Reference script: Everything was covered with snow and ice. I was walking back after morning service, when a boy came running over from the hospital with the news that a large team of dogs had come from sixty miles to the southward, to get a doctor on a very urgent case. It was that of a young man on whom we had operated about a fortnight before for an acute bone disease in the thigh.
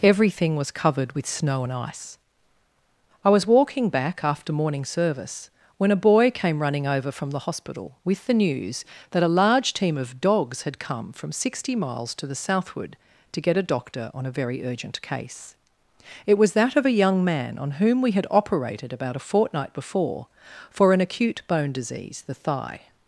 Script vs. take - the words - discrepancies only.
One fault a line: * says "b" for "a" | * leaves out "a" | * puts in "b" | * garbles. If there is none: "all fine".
* leaves out "in"